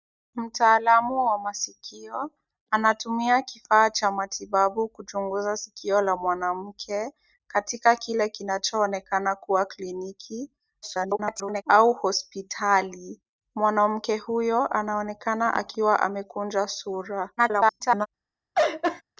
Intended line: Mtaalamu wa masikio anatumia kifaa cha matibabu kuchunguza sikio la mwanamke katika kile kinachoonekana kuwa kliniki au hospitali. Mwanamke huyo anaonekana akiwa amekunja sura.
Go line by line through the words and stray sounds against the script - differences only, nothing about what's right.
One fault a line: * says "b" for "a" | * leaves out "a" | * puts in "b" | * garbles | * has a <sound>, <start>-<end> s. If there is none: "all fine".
* garbles
* garbles
* has a laugh, 18.5-19.0 s